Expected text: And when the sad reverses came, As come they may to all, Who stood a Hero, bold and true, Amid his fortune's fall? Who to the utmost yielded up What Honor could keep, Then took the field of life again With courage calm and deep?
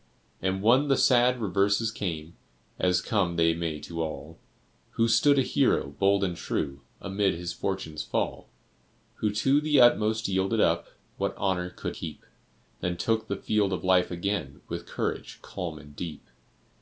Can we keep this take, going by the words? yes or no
yes